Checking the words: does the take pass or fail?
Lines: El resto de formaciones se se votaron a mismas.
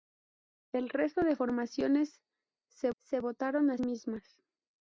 pass